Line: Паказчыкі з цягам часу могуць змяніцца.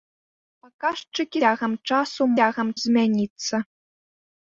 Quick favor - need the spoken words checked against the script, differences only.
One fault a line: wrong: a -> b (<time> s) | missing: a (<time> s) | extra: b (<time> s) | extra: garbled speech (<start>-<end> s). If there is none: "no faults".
missing: з (1.4 s)
wrong: могуць -> цягам (2.4 s)